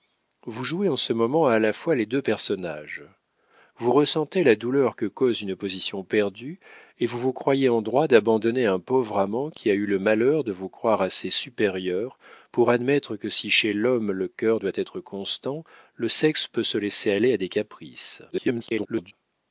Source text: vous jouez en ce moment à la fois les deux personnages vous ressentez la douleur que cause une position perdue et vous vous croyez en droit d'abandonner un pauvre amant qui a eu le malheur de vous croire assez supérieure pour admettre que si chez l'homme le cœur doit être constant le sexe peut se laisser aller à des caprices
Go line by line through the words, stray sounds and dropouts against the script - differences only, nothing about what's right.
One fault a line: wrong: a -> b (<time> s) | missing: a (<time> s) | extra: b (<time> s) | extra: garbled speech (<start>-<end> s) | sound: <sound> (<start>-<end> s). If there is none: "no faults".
extra: garbled speech (18.3-19.1 s)